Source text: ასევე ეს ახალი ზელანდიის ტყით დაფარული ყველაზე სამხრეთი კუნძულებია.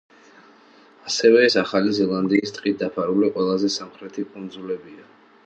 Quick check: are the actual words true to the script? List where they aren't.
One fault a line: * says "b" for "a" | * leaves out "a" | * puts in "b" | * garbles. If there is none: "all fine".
all fine